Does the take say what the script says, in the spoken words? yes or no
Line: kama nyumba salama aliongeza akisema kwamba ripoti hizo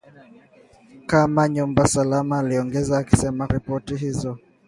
no